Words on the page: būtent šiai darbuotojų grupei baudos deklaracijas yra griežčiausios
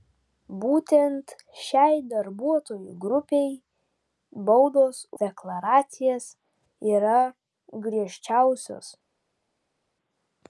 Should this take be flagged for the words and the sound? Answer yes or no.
no